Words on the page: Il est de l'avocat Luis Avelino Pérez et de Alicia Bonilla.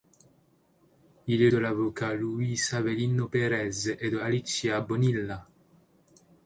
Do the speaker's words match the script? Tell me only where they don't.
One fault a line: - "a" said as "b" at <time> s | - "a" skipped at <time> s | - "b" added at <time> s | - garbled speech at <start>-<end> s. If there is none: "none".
none